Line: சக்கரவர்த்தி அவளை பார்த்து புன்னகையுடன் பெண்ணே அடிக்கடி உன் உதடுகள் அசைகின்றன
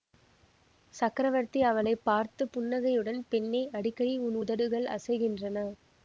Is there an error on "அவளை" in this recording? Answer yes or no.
no